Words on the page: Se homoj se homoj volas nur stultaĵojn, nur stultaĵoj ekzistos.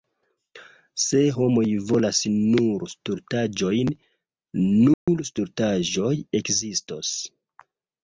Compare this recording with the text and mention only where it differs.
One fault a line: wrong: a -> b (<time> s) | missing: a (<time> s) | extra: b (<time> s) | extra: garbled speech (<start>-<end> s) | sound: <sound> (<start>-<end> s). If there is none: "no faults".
missing: se homoj (1.6 s)
sound: dropout (4.9-5.1 s)